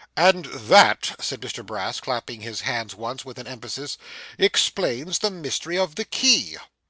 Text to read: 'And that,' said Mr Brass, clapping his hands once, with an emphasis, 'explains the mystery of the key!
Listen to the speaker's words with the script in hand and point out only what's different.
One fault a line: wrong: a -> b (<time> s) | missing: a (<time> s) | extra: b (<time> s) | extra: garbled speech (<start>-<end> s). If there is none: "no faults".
no faults